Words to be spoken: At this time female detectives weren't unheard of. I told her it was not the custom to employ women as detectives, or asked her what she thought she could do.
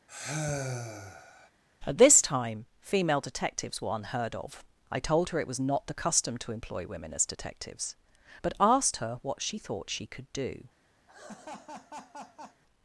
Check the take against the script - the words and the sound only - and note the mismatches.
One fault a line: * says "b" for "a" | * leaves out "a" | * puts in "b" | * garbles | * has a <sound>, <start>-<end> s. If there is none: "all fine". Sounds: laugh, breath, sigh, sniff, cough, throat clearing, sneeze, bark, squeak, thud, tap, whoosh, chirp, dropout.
* has a sigh, 0.1-1.5 s
* says "were" for "weren't"
* says "but" for "or"
* has a laugh, 11.1-12.6 s